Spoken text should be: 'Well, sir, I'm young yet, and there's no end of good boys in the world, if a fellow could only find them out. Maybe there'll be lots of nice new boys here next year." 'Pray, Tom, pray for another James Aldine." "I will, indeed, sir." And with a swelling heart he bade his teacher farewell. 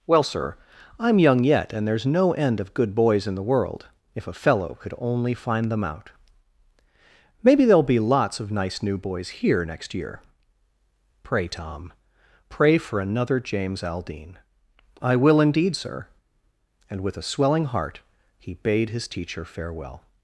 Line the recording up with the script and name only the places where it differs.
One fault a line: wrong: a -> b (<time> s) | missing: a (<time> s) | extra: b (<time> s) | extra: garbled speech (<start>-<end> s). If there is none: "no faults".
no faults